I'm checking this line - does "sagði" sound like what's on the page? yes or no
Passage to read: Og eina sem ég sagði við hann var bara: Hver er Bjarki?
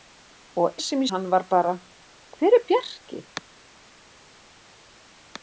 no